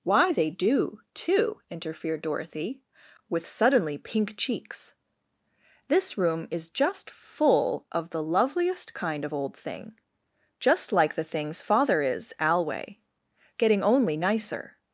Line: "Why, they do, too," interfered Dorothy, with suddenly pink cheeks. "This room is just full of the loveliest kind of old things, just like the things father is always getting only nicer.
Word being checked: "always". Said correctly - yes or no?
no